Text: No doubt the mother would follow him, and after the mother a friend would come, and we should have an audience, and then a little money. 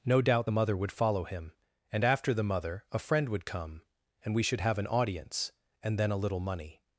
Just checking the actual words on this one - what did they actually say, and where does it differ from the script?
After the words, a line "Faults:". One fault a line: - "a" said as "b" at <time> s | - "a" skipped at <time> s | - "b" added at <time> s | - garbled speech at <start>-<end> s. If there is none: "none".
No doubt the mother would follow him, and after the mother a friend would come, and we should have an audience, and then a little money.
Faults:
none